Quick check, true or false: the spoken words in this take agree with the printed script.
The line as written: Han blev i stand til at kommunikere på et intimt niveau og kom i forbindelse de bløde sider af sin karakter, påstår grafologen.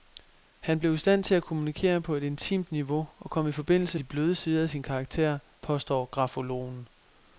true